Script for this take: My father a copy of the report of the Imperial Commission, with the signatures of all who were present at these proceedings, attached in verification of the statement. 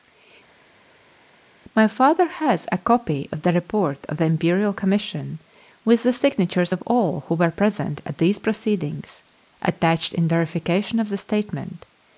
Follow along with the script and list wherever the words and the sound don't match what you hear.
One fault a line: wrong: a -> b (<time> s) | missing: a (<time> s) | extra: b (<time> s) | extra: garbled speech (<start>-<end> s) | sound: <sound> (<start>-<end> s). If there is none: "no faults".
extra: has (2.3 s)